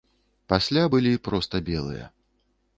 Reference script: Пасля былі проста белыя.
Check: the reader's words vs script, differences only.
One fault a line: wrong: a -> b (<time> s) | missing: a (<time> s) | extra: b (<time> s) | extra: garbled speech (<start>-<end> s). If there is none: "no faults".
no faults